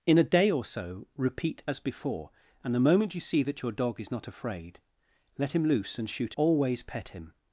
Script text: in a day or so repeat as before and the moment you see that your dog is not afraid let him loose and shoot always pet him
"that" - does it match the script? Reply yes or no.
yes